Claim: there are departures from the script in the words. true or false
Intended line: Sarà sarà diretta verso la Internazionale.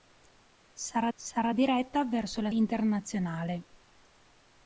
false